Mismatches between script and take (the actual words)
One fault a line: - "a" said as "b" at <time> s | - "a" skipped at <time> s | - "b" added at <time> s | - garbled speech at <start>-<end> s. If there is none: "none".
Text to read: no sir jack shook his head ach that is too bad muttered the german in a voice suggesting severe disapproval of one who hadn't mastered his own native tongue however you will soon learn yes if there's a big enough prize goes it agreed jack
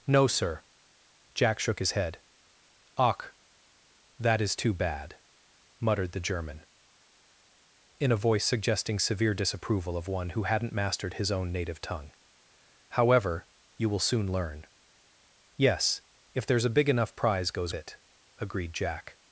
none